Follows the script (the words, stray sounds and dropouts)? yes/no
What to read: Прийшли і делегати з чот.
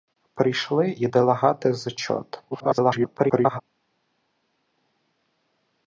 no